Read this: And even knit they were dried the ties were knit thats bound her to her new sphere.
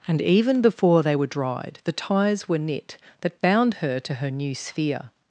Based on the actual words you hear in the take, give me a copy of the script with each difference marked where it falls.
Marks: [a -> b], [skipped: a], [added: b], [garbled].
And even [knit -> before] they were dried the ties were knit [thats -> that] bound her to her new sphere.